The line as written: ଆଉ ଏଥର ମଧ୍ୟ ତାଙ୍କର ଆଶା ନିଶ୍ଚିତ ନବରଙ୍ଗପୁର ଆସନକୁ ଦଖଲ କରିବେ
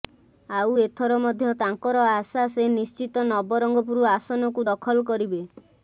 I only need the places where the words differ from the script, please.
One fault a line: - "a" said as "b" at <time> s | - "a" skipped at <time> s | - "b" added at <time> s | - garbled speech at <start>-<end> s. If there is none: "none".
- "ସେ" added at 2.5 s